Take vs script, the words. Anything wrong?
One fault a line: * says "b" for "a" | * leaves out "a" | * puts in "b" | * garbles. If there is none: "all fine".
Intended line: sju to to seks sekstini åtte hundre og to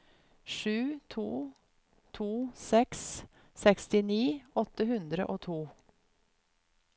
all fine